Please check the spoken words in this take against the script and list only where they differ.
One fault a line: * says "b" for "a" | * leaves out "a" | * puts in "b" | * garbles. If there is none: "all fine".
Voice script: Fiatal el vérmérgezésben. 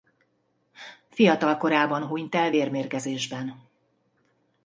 * puts in "korában hunyt"